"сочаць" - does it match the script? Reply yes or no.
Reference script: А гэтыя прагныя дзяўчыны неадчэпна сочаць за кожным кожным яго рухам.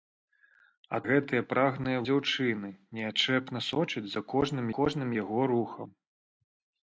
yes